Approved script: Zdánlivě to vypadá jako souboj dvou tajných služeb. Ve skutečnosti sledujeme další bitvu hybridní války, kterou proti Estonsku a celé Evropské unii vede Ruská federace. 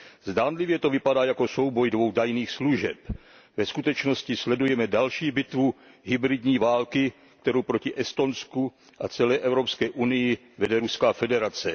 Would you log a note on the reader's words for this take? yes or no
no